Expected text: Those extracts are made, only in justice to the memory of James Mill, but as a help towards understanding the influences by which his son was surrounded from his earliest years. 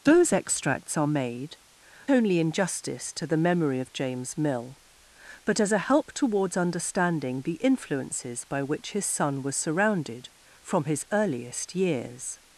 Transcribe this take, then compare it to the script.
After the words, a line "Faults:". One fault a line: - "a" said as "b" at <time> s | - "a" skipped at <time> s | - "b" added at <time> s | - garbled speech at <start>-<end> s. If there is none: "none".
Those extracts are made, only in justice to the memory of James Mill, but as a help towards understanding the influences by which his son was surrounded from his earliest years.
Faults:
none